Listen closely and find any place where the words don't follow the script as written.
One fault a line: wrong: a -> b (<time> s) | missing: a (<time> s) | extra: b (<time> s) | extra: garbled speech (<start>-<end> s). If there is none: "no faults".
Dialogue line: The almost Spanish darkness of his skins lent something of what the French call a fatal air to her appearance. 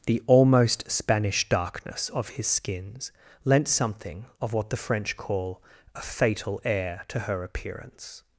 no faults